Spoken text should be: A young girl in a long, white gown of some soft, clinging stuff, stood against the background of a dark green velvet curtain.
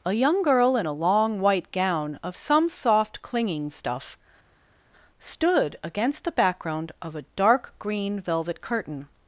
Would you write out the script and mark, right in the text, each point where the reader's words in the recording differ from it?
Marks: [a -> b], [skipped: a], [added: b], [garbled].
A young girl in a long, white gown of some soft, clinging stuff, stood against the background of a dark green velvet curtain.